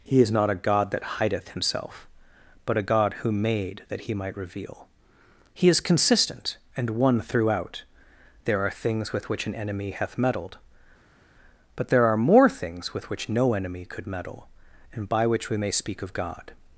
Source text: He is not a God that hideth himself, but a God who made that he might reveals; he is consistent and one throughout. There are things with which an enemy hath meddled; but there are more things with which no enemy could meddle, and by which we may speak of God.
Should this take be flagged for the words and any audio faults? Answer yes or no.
yes